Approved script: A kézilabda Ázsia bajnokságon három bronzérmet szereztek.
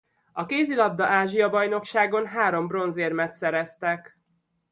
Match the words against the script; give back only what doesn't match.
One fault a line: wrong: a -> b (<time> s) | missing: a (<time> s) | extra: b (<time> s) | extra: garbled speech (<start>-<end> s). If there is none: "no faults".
no faults